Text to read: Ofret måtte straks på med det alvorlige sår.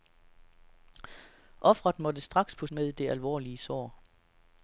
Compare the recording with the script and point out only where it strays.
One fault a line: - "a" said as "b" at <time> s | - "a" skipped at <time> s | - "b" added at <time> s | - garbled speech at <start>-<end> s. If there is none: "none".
none